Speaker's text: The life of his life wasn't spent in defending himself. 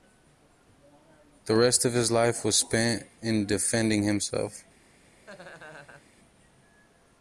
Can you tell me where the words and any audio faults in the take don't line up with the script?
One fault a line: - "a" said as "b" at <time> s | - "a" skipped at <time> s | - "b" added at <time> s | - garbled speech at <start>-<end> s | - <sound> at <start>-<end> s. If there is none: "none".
- "life" said as "rest" at 1.6 s
- "wasn't" said as "was" at 2.4 s
- laugh at 5.3-6.1 s